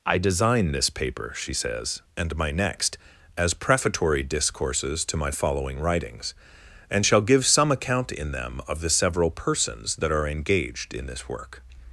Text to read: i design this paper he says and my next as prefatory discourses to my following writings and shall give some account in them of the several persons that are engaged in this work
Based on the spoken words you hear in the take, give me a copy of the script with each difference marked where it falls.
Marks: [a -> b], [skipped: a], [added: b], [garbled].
i design this paper [he -> she] says and my next as prefatory discourses to my following writings and shall give some account in them of the several persons that are engaged in this work